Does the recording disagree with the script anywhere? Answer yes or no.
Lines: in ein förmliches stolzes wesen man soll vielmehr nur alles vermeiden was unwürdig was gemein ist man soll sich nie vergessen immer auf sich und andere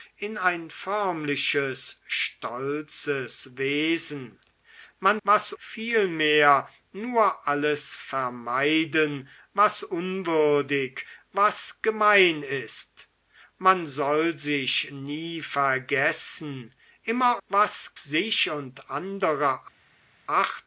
yes